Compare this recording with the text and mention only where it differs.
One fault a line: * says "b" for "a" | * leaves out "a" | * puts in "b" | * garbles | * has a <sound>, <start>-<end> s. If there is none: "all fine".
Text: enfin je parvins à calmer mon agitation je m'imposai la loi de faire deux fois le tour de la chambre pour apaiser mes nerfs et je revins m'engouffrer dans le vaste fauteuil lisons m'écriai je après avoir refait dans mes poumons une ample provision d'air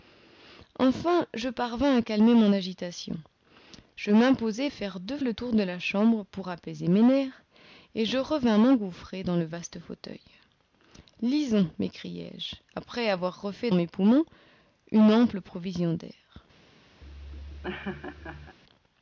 * leaves out "la loi de"
* leaves out "fois"
* leaves out "dans"
* has a laugh, 17.0-18.6 s